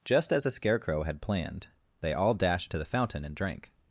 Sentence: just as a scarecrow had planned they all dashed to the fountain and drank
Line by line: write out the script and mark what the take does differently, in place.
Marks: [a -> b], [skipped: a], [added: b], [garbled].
just as a scarecrow had planned they all dashed to the fountain and drank